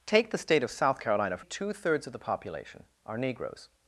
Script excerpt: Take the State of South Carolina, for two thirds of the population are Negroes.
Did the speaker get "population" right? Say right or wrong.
right